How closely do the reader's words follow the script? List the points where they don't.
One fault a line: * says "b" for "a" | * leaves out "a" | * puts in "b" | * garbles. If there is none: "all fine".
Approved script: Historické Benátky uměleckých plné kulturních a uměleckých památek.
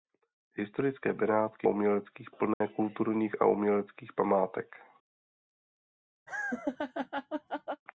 all fine